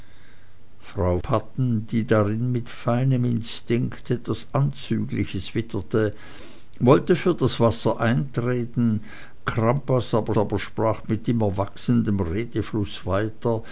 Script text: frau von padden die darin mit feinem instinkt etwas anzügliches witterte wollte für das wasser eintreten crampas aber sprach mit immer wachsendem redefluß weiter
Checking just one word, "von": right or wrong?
wrong